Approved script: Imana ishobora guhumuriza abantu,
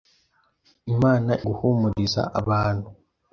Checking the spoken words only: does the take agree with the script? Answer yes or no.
no